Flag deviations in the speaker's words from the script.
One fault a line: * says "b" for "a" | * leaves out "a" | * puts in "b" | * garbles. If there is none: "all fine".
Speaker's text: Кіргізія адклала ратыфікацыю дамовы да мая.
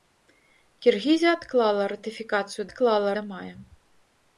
* says "адклала" for "дамовы"